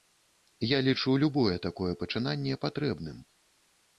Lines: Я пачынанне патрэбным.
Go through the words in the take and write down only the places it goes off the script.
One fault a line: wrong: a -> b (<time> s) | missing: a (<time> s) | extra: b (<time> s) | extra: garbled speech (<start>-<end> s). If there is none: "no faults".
extra: лічу любое такое (0.9 s)